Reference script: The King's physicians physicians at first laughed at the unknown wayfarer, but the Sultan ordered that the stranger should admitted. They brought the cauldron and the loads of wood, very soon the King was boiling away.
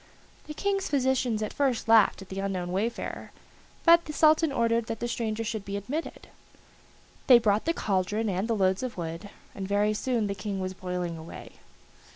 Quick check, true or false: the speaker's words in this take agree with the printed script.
false